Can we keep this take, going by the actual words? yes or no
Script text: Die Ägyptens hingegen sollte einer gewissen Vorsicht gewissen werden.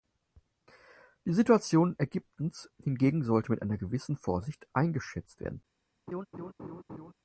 no